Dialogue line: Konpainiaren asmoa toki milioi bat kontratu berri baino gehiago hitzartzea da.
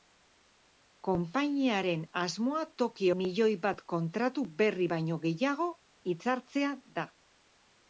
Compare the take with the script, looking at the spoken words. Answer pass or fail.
pass